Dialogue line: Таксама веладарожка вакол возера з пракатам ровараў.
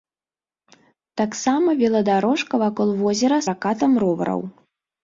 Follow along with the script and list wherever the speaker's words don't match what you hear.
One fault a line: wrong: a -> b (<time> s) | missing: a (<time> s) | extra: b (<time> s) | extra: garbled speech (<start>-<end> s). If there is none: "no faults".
missing: з (3.4 s)